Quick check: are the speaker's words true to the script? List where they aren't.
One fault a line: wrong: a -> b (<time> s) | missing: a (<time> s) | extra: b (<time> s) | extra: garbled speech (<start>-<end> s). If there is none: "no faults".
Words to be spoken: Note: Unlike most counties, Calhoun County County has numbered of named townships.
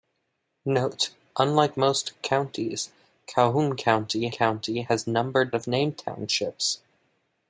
no faults